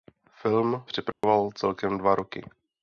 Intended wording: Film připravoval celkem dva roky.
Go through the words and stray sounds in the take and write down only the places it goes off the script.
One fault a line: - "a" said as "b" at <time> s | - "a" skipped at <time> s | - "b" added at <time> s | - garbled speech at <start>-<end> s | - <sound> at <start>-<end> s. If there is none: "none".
- dropout at 1.1-1.2 s